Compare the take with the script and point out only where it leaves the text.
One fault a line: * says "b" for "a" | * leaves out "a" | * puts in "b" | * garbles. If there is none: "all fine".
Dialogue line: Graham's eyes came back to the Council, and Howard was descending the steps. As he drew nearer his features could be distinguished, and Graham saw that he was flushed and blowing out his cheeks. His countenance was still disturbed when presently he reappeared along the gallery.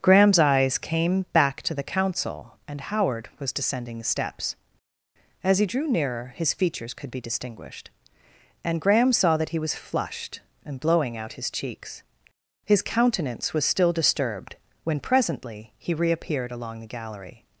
all fine